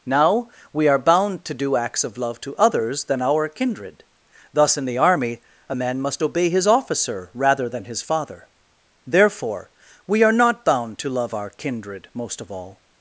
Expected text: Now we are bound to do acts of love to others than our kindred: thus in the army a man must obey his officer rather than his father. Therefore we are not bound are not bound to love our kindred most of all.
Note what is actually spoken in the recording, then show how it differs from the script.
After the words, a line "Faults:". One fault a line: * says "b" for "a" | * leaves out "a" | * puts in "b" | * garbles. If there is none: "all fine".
Now we are bound to do acts of love to others than our kindred: thus in the army a man must obey his officer rather than his father. Therefore we are not bound to love our kindred most of all.
Faults:
* leaves out "are not bound"